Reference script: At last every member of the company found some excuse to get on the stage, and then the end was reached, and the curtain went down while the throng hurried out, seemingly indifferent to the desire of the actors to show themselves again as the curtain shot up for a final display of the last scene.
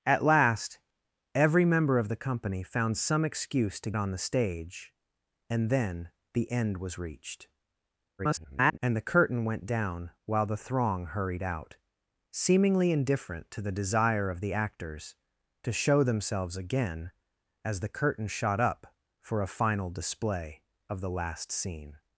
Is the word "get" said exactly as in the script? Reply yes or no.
no